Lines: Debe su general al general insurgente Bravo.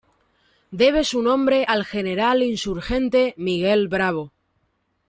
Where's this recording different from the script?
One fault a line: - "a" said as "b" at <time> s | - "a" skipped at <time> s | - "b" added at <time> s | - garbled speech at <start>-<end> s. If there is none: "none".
- "general" said as "nombre" at 1.2 s
- "Miguel" added at 3.4 s